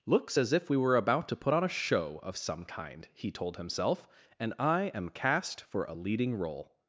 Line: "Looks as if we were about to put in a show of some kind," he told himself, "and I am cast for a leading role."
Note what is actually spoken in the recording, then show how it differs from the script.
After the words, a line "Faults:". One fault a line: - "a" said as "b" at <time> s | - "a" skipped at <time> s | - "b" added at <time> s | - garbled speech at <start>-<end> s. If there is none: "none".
"Looks as if we were about to put on a show of some kind," he told himself, "and I am cast for a leading role."
Faults:
- "in" said as "on" at 1.5 s